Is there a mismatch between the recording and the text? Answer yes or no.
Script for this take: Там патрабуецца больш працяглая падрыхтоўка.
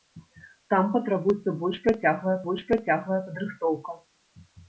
yes